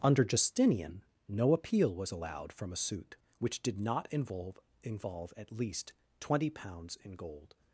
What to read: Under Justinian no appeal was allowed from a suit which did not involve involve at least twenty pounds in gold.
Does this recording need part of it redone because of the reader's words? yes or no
no